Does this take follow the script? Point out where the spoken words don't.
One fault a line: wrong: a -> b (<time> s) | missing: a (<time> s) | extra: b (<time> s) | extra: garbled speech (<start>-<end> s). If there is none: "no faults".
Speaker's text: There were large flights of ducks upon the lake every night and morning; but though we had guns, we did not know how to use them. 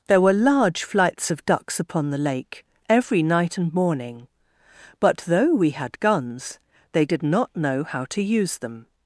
wrong: we -> they (6.9 s)